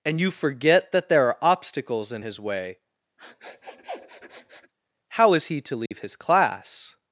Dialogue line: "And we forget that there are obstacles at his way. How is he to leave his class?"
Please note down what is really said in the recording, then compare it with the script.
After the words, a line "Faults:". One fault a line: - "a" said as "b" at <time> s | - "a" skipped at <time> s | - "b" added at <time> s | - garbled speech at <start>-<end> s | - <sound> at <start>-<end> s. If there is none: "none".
"And you forget that there are obstacles in his way. How is he to leave his class?"
Faults:
- "we" said as "you" at 0.2 s
- "at" said as "in" at 2.1 s
- sniff at 3.2-4.7 s
- dropout at 5.9-5.9 s